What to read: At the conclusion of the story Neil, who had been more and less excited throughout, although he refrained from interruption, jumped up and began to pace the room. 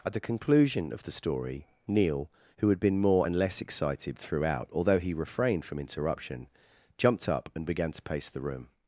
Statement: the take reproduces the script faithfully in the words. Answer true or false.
true